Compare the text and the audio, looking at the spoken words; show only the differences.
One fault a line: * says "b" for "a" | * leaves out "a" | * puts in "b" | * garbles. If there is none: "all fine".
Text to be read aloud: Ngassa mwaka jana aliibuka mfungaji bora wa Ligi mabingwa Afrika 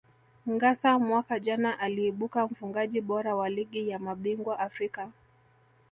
* puts in "ya"